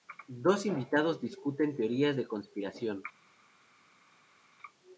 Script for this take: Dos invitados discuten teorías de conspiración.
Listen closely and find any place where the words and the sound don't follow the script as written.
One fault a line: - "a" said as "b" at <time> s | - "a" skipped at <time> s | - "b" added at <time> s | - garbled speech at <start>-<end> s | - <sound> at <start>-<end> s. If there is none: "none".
none